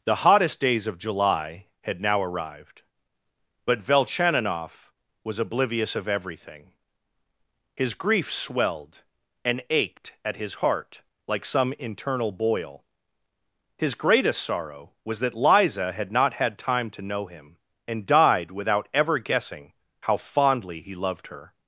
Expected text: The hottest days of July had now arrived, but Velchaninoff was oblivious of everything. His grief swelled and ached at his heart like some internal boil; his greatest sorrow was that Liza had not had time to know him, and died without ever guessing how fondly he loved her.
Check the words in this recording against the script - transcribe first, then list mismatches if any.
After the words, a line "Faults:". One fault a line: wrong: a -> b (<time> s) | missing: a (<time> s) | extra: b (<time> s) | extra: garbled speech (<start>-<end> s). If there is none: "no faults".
The hottest days of July had now arrived, but Velchaninoff was oblivious of everything. His grief swelled and ached at his heart like some internal boil; his greatest sorrow was that Liza had not had time to know him, and died without ever guessing how fondly he loved her.
Faults:
no faults